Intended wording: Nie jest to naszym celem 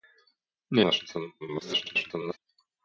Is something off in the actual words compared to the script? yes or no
yes